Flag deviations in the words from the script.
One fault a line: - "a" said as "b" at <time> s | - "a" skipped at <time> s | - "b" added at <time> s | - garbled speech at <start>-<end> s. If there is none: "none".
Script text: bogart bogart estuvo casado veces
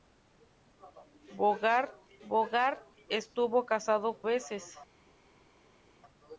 none